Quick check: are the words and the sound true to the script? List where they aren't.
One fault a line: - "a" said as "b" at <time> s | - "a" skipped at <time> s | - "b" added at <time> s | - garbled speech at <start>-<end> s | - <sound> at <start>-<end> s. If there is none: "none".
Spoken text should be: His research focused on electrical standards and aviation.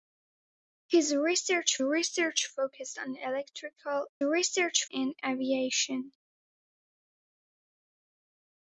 - "research" added at 1.8 s
- "standards" said as "research" at 4.2 s